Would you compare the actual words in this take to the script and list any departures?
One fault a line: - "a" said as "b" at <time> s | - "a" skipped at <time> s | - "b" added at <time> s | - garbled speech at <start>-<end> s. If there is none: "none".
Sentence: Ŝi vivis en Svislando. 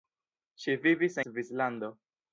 - "en" skipped at 1.2 s